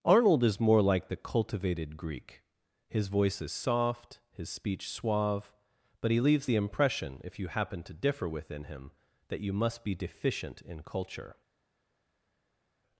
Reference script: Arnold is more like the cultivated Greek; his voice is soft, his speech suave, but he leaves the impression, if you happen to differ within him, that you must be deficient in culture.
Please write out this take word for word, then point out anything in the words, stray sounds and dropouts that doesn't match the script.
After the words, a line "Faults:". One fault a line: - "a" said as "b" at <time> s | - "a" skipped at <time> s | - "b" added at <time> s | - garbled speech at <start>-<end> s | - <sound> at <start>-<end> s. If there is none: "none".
Arnold is more like the cultivated Greek; his voice is soft, his speech suave, but he leaves the impression, if you happen to differ within him, that you must be deficient in culture.
Faults:
none